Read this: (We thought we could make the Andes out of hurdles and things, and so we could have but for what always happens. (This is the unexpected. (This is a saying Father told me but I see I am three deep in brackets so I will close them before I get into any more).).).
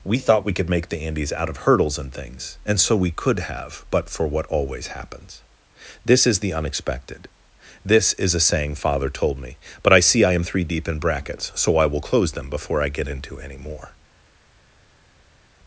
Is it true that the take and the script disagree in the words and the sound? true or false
false